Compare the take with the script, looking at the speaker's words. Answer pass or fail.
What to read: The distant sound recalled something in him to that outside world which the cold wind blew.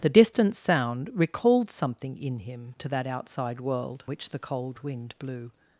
pass